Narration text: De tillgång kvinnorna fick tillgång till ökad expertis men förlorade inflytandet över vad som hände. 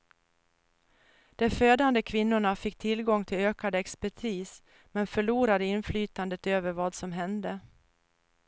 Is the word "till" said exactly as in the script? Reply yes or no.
yes